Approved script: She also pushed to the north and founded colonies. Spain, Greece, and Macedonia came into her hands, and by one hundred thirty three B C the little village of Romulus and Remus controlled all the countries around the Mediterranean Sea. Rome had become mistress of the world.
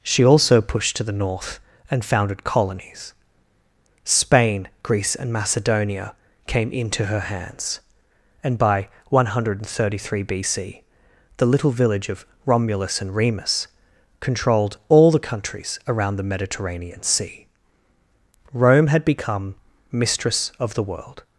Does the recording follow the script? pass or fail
pass